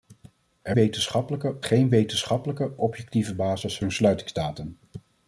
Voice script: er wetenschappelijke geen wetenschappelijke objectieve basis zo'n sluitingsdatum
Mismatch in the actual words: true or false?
false